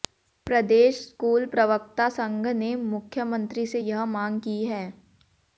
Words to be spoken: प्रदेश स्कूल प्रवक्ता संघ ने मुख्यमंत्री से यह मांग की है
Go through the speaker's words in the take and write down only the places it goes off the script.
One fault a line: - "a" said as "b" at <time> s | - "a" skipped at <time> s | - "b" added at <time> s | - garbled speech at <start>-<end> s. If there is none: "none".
none